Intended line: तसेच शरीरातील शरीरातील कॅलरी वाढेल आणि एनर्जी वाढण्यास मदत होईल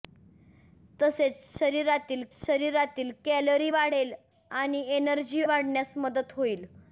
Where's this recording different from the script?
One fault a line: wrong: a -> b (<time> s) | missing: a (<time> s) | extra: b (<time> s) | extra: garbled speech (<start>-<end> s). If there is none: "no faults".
no faults